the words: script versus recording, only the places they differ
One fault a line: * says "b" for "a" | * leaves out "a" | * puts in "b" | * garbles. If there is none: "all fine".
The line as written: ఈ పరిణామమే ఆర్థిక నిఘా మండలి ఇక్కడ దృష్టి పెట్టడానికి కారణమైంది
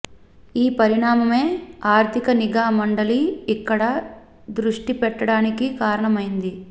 all fine